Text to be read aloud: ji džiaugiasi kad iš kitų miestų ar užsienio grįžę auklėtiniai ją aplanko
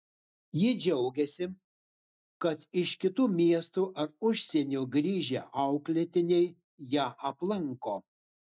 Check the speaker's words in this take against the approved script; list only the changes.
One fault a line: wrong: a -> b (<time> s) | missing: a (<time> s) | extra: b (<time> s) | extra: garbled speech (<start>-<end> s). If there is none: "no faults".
no faults